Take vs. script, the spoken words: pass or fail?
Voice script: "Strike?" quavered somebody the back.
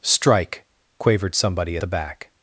pass